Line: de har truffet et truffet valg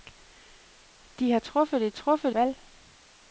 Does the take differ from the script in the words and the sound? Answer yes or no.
no